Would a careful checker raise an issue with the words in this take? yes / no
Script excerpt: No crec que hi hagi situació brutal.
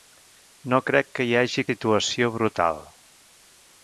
no